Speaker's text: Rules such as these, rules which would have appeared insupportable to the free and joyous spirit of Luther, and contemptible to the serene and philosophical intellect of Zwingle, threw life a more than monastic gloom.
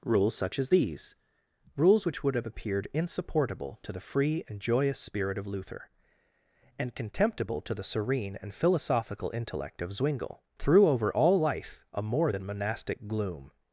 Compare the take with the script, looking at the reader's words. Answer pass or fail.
fail